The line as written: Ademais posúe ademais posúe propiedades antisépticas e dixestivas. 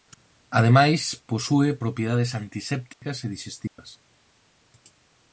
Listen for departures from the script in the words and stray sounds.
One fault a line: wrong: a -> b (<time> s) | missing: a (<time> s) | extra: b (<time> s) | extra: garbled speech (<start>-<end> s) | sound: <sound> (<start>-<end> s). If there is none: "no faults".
missing: ademais posúe (1.7 s)
sound: dropout (2.9-3.0 s)
sound: dropout (3.7-3.8 s)